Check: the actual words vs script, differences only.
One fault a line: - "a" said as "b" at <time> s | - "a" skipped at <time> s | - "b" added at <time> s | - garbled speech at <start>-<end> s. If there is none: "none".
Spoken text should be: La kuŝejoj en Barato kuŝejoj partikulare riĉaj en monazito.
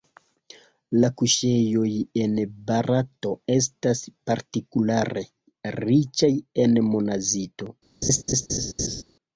- "kuŝejoj" said as "estas" at 3.6 s